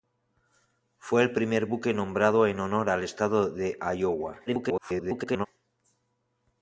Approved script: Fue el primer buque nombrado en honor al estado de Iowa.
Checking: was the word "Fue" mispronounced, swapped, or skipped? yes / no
no